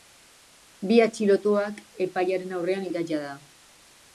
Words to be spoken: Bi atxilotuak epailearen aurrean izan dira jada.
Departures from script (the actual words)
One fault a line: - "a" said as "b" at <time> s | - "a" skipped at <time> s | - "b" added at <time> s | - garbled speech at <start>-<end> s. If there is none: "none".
- "izan" skipped at 2.9 s